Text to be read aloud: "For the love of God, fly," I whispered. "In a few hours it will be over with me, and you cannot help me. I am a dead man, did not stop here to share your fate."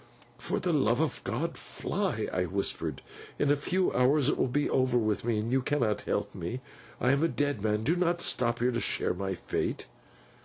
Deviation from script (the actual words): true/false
true